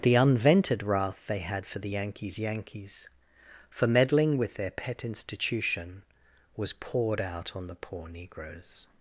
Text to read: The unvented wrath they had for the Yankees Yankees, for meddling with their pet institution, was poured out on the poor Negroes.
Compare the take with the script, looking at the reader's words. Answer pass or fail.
pass